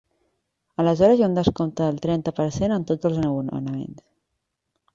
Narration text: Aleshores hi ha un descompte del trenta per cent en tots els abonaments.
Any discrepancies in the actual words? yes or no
no